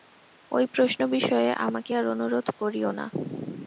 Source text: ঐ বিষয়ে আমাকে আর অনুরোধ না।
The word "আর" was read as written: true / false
true